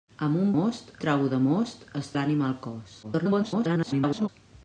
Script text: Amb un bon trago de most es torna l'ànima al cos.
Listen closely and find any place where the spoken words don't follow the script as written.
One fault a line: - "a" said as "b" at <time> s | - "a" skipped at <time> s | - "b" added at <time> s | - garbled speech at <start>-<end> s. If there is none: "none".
- "bon" said as "most" at 0.5 s
- "torna" skipped at 2.1 s
- garbled speech at 3.0-4.3 s